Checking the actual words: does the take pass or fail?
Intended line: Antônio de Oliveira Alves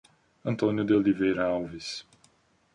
pass